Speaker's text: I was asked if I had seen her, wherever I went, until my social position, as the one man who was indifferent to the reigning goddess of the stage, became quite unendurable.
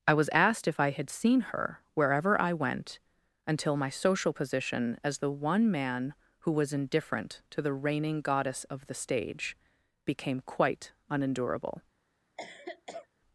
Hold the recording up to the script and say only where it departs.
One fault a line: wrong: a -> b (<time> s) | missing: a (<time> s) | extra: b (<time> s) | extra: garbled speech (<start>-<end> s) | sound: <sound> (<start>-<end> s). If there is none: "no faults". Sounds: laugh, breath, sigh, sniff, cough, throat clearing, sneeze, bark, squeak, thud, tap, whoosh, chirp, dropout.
sound: cough (12.4-13.1 s)